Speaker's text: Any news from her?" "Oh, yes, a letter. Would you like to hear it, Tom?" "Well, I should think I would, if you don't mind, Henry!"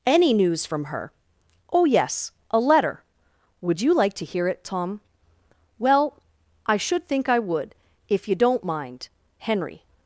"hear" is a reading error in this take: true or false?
false